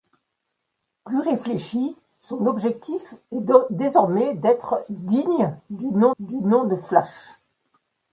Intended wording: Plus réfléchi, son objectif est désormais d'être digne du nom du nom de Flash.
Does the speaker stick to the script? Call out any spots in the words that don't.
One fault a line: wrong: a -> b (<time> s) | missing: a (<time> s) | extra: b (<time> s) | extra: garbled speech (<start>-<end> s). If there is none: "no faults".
no faults